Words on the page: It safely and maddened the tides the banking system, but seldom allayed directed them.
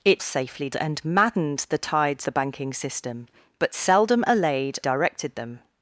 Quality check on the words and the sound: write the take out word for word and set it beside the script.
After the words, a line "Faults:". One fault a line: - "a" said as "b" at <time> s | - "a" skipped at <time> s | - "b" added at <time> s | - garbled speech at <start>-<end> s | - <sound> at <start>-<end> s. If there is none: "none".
It safely and maddened the tides the banking system, but seldom allayed directed them.
Faults:
none